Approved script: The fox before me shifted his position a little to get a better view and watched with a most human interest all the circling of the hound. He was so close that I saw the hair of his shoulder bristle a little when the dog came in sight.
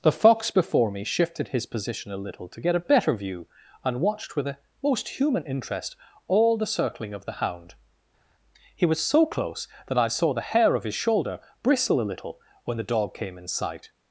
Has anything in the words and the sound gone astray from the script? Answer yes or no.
no